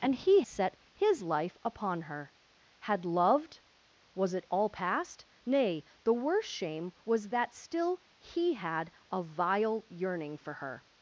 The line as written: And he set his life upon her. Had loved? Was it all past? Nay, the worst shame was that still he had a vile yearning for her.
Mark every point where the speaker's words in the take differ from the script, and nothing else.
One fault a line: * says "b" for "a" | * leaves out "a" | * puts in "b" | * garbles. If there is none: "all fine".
all fine